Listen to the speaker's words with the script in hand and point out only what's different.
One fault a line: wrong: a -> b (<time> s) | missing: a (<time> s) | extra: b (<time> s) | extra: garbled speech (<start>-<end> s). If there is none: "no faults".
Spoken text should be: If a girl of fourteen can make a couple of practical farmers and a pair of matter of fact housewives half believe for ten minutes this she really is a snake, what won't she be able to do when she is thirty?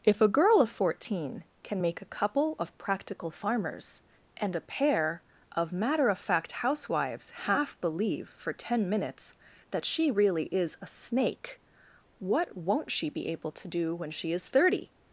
wrong: this -> that (9.7 s)